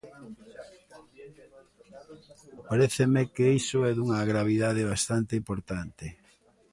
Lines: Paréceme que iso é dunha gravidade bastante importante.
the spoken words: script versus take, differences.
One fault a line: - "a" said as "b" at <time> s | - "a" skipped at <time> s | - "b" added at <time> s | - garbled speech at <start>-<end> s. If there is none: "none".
none